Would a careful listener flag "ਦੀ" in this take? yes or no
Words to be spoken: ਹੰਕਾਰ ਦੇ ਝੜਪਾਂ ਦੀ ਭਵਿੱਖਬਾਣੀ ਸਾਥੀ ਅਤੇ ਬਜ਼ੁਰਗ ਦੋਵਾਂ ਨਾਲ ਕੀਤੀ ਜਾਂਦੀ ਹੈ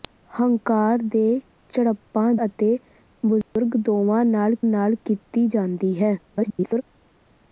yes